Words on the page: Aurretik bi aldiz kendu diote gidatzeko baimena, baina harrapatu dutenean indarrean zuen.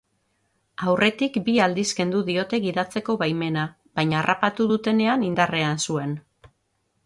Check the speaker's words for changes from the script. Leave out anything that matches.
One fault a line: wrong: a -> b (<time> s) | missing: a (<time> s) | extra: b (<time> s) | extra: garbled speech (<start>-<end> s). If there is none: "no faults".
no faults